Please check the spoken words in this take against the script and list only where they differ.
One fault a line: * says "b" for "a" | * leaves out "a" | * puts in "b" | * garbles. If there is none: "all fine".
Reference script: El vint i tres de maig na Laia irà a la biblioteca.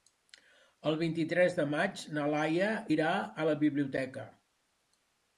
all fine